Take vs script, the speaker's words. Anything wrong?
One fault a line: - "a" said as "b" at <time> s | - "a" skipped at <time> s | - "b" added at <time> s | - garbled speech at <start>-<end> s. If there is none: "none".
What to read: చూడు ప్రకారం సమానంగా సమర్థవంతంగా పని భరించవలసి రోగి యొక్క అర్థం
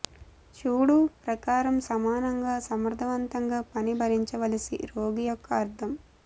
none